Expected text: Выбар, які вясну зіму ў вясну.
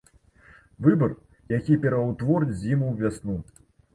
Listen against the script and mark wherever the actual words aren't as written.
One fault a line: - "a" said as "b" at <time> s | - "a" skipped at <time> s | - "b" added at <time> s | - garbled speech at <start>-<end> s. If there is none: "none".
- "вясну" said as "пераўтворыць" at 1.9 s